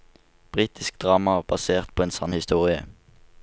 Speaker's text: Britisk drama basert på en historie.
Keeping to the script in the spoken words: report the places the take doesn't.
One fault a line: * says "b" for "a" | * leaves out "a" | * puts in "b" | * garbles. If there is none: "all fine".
* puts in "sann"